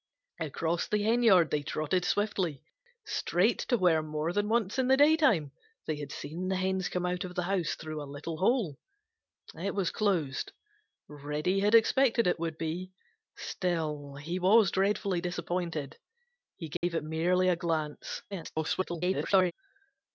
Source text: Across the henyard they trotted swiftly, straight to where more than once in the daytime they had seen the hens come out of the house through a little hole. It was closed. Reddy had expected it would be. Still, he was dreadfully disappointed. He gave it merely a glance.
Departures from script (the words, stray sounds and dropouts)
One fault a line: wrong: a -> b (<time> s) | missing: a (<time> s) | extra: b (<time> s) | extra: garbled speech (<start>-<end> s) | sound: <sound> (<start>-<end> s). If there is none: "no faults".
sound: dropout (16.8-16.8 s)
extra: garbled speech (18.3-19.5 s)